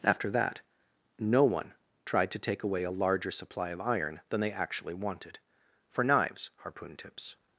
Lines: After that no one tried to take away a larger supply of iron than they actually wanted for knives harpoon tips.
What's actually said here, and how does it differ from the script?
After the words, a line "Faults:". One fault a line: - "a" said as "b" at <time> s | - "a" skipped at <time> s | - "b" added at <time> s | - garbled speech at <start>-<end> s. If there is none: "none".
After that no one tried to take away a larger supply of iron than they actually wanted for knives harpoon tips.
Faults:
none